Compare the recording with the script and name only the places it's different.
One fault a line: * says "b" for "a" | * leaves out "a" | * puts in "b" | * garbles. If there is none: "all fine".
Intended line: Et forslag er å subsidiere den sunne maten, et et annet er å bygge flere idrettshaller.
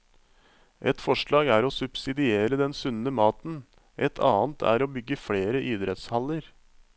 * leaves out "et"